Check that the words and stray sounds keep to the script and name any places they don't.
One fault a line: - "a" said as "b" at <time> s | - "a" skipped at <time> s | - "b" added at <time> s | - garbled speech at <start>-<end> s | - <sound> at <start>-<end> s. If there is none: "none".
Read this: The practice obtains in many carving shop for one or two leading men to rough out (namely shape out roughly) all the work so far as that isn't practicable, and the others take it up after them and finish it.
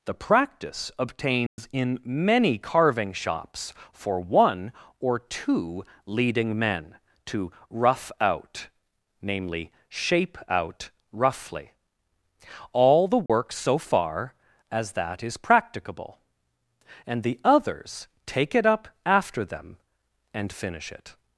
- dropout at 1.5-1.6 s
- "shop" said as "shops" at 3.1 s
- dropout at 13.3-13.3 s
- "isn't" said as "is" at 15.2 s